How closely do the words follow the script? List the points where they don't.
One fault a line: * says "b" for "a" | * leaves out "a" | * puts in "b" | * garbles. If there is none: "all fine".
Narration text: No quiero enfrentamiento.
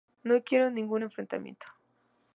* puts in "ningún"